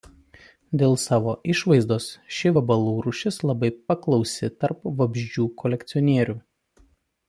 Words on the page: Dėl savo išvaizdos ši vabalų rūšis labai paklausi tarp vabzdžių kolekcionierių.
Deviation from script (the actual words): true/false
false